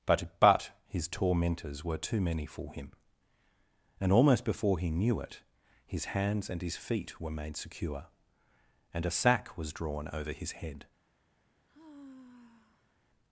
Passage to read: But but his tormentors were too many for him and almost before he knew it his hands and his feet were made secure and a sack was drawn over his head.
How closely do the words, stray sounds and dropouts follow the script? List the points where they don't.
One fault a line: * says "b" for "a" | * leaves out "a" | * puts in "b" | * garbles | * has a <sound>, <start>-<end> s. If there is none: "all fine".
* has a sigh, 11.7-12.9 s